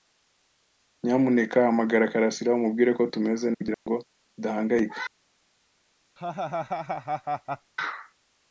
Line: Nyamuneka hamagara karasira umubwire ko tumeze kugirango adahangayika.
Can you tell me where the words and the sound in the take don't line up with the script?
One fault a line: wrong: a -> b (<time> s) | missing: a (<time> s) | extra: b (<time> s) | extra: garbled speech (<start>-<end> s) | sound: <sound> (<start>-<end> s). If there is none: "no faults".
sound: dropout (3.7-3.9 s)
sound: laugh (6.2-7.7 s)